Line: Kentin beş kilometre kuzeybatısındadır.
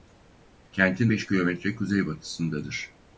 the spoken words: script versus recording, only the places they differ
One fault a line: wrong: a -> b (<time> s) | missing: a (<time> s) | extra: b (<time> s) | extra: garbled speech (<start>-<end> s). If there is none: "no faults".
no faults